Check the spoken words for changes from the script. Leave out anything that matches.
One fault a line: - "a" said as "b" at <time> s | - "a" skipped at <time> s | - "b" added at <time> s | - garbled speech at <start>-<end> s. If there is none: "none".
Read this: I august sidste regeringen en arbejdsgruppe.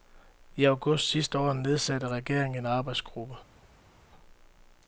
- "år nedsatte" added at 1.4 s